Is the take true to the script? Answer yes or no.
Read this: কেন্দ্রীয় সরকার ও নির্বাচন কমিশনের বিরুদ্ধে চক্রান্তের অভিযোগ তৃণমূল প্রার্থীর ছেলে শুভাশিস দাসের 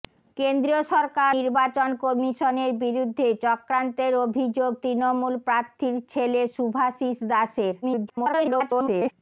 no